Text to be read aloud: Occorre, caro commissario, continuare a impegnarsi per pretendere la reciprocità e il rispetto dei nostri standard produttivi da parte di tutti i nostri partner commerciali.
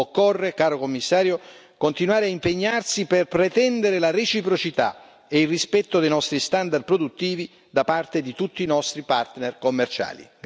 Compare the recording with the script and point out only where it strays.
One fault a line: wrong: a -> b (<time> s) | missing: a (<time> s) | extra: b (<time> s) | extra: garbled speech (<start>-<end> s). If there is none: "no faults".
no faults